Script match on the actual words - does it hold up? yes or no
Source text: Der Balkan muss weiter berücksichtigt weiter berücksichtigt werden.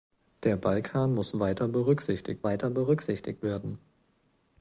yes